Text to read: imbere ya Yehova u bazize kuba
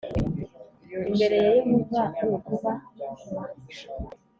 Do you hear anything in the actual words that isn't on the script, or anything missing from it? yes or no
yes